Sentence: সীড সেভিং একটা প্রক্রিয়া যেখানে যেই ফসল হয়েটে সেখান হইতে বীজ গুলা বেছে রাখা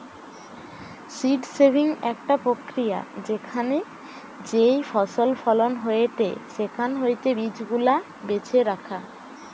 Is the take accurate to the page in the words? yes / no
no